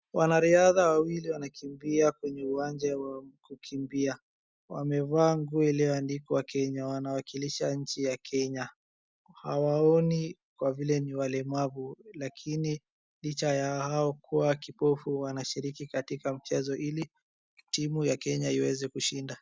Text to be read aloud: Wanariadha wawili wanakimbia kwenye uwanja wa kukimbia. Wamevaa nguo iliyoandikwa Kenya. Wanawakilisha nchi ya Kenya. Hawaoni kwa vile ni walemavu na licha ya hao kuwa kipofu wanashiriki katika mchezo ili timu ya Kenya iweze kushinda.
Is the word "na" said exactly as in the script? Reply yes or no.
no